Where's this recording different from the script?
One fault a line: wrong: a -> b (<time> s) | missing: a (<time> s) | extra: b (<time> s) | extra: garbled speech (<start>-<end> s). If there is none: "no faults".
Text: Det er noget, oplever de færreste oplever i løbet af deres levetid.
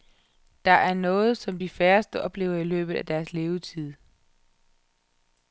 wrong: oplever -> som (1.4 s)